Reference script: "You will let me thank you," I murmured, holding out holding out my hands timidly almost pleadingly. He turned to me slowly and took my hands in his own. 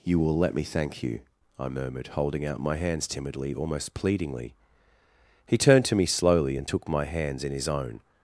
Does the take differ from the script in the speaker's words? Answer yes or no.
yes